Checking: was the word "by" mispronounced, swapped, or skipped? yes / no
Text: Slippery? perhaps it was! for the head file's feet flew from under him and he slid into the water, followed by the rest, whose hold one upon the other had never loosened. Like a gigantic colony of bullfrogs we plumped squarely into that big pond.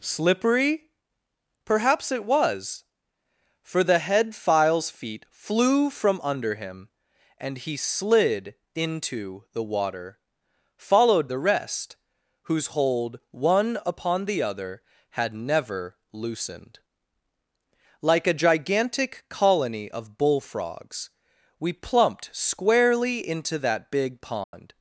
yes